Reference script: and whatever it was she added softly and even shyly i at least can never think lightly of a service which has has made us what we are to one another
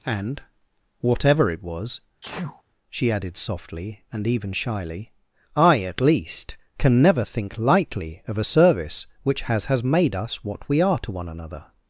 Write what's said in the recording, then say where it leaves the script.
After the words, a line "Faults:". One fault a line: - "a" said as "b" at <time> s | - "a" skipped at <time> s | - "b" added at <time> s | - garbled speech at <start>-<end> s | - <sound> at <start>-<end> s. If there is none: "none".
and whatever it was she added softly and even shyly i at least can never think lightly of a service which has has made us what we are to one another
Faults:
- sneeze at 2.2-2.6 s